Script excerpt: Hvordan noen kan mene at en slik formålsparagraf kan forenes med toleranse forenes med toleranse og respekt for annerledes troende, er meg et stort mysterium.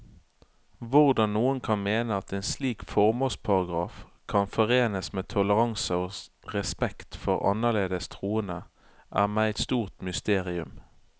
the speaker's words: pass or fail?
fail